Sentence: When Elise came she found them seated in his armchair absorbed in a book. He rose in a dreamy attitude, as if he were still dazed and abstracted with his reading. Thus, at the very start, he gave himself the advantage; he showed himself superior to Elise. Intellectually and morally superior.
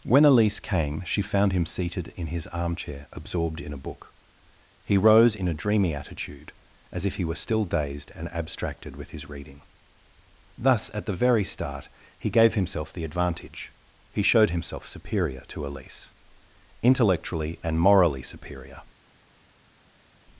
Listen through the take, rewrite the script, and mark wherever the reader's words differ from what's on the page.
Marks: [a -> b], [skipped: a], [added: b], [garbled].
When Elise came she found [them -> him] seated in his armchair absorbed in a book. He rose in a dreamy attitude, as if he were still dazed and abstracted with his reading. Thus, at the very start, he gave himself the advantage; he showed himself superior to Elise. Intellectually and morally superior.